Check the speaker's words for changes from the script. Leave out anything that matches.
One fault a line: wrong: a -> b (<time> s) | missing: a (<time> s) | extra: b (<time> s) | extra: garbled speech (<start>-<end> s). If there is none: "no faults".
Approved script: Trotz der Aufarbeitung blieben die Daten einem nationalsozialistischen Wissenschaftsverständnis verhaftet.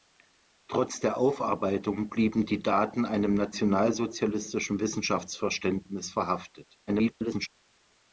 extra: garbled speech (6.9-7.5 s)